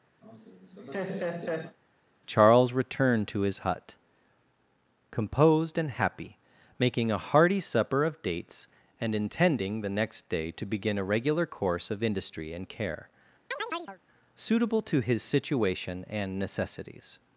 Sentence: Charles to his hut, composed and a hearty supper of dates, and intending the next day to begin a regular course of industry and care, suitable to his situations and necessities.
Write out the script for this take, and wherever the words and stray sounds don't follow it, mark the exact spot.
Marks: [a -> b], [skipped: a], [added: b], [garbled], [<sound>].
[laugh] Charles [added: returned] to his hut, composed and [added: happy making] a hearty supper of dates, and intending the next day to begin a regular course of industry and care, [chirp] suitable to his [situations -> situation] and necessities.